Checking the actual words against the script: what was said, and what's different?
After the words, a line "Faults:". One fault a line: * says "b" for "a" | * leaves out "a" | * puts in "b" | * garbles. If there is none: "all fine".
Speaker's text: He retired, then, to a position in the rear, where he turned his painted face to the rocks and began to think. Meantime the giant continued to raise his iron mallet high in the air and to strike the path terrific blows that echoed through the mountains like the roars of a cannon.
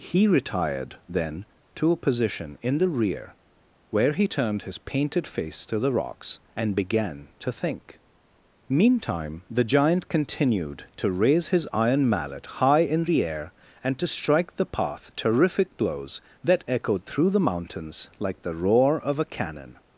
He retired, then, to a position in the rear, where he turned his painted face to the rocks and began to think. Meantime the giant continued to raise his iron mallet high in the air and to strike the path terrific blows that echoed through the mountains like the roar of a cannon.
Faults:
* says "roar" for "roars"